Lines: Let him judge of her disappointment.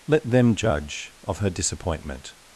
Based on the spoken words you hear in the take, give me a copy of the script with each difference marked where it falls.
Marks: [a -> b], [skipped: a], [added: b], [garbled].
Let [him -> them] judge of her disappointment.